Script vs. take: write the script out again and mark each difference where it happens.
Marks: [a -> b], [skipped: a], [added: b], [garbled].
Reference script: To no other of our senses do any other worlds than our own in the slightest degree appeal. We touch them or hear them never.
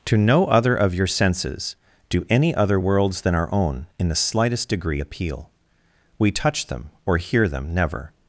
To no other of [our -> your] senses do any other worlds than our own in the slightest degree appeal. We touch them or hear them never.